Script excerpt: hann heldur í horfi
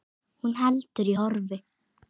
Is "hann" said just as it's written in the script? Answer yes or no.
no